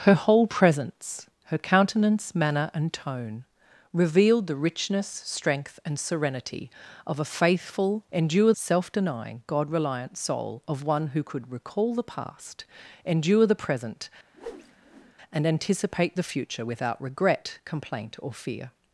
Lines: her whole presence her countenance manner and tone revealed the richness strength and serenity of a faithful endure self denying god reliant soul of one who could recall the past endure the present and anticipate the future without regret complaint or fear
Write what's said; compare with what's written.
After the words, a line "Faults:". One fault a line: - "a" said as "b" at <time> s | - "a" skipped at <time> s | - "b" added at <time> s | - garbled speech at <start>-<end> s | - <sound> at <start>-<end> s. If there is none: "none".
her whole presence her countenance manner and tone revealed the richness strength and serenity of a faithful endure self denying god reliant soul of one who could recall the past endure the present and anticipate the future without regret complaint or fear
Faults:
- whoosh at 14.3-15.1 s